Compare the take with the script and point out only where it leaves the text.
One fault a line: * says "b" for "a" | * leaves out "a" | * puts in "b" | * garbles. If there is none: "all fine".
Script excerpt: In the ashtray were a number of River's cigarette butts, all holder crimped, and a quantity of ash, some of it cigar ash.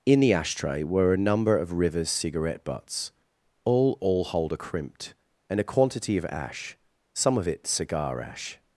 * puts in "all"